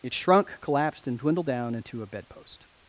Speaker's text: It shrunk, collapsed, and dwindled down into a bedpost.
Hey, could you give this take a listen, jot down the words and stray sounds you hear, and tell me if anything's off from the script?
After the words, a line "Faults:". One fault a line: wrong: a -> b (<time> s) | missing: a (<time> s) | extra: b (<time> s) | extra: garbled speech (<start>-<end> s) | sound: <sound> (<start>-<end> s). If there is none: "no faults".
It shrunk, collapsed, and dwindled down into a bedpost.
Faults:
no faults